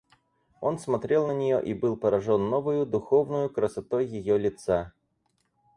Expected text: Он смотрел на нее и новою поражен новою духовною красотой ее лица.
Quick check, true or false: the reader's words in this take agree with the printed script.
false